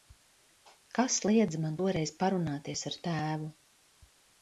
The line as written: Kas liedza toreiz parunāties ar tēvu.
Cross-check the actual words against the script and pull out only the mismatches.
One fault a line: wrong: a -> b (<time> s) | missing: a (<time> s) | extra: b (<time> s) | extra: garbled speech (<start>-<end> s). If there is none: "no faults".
extra: man (1.7 s)